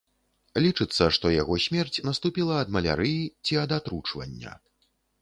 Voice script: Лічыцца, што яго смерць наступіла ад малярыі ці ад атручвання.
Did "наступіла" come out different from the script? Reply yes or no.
no